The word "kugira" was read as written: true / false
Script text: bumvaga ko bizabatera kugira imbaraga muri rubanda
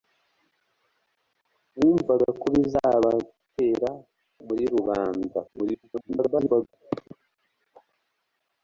false